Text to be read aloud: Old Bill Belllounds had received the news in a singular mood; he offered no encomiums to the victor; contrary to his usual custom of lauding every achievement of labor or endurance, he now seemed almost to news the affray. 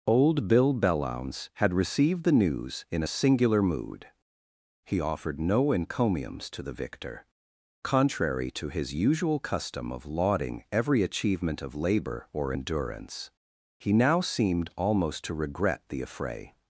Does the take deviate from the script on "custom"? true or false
false